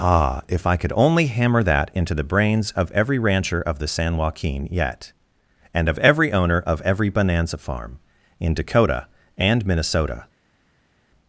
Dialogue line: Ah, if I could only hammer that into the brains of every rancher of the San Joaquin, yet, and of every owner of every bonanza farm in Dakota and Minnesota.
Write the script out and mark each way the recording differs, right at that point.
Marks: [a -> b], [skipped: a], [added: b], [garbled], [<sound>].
Ah, if I could only hammer that into the brains of every rancher of the San Joaquin, yet, and of every owner of every bonanza farm in Dakota and Minnesota.